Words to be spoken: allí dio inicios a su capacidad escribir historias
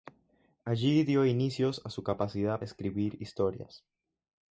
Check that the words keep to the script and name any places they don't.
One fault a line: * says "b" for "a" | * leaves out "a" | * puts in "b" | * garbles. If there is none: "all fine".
all fine